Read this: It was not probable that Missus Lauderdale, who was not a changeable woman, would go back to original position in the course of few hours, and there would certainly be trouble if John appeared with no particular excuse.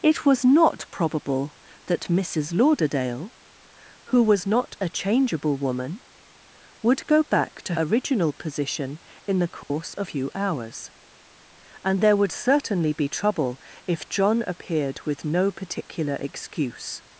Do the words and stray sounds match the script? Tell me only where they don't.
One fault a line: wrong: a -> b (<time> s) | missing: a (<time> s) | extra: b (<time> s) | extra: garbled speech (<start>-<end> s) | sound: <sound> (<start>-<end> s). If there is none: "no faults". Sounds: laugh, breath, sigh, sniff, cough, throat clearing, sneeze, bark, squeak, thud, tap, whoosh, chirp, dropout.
sound: dropout (9.6-9.7 s)